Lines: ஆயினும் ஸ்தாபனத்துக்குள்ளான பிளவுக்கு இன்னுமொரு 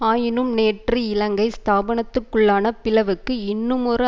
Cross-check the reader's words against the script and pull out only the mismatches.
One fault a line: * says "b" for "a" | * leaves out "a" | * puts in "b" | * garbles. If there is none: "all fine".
* puts in "நேற்று இலங்கை"